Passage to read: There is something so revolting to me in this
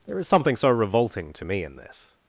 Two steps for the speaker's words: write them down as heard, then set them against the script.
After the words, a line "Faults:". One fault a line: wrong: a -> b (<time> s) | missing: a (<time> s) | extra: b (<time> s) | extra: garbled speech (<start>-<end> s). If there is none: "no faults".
There is something so revolting to me in this
Faults:
no faults